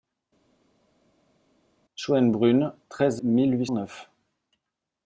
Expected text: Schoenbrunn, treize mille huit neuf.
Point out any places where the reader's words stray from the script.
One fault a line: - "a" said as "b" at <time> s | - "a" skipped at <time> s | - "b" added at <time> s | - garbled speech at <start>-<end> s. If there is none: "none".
none